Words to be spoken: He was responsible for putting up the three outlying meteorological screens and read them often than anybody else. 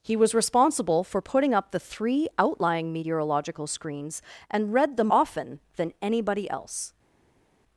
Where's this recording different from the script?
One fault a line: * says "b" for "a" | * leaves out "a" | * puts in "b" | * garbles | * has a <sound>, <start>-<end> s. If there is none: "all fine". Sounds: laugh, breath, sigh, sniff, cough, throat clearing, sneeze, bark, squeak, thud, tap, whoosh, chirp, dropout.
all fine